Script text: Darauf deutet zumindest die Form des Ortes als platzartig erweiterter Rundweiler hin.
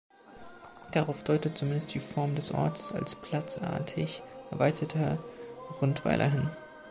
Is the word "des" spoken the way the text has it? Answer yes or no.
yes